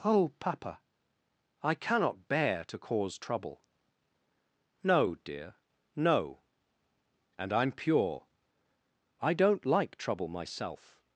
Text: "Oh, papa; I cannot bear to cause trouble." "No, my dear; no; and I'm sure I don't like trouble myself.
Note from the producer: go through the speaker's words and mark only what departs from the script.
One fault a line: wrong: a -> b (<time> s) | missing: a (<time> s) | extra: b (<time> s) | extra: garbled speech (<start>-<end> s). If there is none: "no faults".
missing: my (5.2 s)
wrong: sure -> pure (7.7 s)